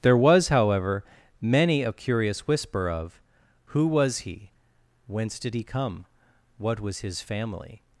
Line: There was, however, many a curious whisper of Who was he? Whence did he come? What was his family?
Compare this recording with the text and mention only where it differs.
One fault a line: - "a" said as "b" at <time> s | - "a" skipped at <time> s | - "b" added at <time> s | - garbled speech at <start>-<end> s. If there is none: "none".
none